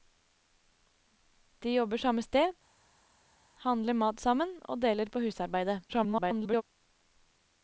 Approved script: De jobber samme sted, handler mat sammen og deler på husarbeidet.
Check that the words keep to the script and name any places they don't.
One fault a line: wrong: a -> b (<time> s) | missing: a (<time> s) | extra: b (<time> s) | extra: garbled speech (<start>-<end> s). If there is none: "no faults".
extra: garbled speech (5.9-6.6 s)